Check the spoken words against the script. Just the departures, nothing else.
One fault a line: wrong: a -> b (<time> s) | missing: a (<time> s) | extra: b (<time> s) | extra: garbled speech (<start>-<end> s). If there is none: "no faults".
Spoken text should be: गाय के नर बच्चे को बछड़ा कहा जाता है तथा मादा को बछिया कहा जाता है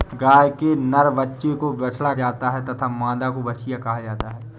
missing: कहा (2.1 s)